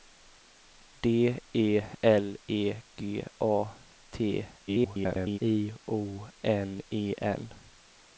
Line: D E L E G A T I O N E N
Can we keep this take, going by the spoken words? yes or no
no